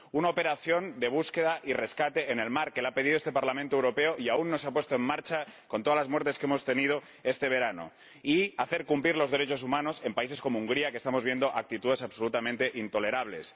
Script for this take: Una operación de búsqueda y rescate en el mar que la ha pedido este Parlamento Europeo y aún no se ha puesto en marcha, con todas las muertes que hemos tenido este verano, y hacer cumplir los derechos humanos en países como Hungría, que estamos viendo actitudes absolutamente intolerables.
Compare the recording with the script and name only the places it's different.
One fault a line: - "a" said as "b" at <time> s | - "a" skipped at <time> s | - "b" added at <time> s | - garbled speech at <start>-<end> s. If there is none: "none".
none